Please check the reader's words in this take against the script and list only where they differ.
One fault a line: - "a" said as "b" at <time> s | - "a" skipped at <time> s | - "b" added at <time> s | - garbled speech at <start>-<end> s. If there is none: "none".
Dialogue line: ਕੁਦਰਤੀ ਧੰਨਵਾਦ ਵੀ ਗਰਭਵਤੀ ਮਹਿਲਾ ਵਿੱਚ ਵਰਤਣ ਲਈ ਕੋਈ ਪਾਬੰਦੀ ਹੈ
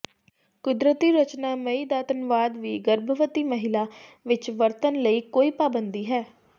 - "ਰਚਨਾ ਮਈ ਦਾ" added at 1.1 s